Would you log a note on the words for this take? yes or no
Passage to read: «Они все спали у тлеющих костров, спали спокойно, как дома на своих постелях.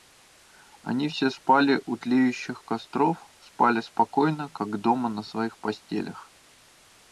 no